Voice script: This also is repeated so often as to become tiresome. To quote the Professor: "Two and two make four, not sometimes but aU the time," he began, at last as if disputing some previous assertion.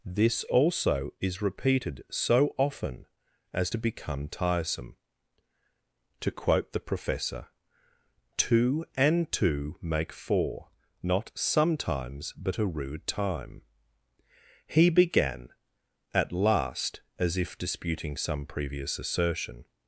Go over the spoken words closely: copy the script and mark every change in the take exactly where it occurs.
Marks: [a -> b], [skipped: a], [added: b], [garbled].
This also is repeated so often as to become tiresome. To quote the Professor: "Two and two make four, not sometimes but [aU the -> a rude] time," he began, at last as if disputing some previous assertion.